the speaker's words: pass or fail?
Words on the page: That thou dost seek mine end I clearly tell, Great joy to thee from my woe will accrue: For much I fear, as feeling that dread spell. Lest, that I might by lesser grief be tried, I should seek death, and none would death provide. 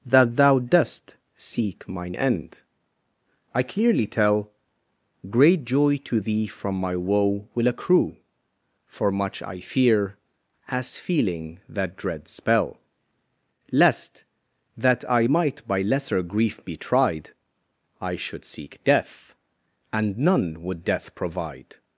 pass